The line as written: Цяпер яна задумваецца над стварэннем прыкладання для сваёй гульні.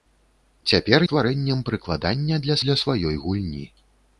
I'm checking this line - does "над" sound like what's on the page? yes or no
no